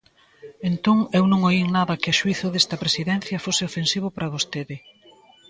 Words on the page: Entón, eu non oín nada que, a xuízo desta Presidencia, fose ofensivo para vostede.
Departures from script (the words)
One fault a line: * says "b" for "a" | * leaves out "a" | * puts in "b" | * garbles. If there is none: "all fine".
all fine